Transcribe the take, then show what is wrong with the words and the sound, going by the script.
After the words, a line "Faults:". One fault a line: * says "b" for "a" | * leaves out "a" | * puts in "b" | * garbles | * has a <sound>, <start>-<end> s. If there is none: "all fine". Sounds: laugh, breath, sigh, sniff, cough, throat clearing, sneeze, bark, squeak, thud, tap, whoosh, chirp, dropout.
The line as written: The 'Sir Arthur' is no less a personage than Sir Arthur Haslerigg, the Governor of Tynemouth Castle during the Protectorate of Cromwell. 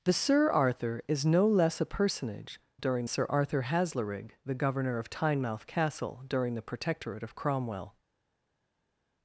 The 'Sir Arthur' is no less a personage during Sir Arthur Haslerigg, the Governor of Tynemouth Castle during the Protectorate of Cromwell.
Faults:
* says "during" for "than"